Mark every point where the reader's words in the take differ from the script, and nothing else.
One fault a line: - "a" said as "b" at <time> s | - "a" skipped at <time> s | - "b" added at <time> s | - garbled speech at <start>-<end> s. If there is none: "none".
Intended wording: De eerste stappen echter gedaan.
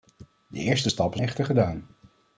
none